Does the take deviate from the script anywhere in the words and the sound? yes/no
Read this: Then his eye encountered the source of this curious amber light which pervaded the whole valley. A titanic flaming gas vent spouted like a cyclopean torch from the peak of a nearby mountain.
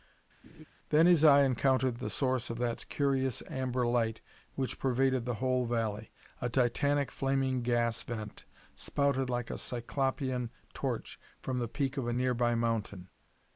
yes